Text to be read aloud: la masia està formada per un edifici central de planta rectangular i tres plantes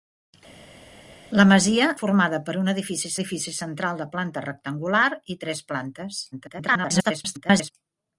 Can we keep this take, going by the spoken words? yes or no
no